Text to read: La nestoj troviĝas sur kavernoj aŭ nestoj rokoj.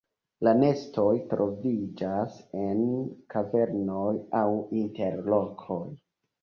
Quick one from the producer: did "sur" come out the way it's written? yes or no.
no